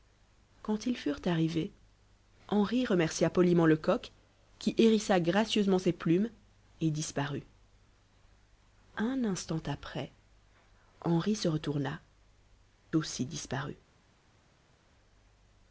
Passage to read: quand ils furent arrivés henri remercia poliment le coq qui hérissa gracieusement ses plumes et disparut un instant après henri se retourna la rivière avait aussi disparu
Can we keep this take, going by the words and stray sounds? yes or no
no